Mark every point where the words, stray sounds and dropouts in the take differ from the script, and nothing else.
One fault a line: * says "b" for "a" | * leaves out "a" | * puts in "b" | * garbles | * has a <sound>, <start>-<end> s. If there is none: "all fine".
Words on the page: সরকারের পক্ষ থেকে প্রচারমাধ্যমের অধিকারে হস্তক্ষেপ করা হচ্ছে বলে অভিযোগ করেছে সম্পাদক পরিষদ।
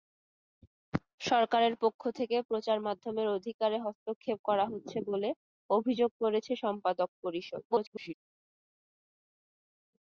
* garbles